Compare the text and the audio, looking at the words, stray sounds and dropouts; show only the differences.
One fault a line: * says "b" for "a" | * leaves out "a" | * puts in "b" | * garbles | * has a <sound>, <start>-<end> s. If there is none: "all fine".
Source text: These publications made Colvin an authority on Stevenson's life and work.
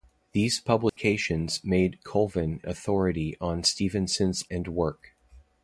* has a dropout, 0.9-1.0 s
* leaves out "an"
* leaves out "life"